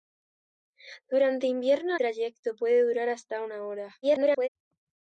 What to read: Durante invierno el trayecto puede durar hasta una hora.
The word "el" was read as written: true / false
false